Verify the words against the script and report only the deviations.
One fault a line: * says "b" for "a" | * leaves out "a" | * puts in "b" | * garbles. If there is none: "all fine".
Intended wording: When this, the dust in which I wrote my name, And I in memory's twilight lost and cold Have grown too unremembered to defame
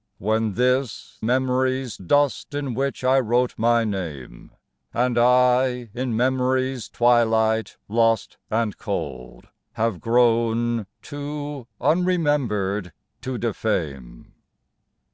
* says "memory's" for "the"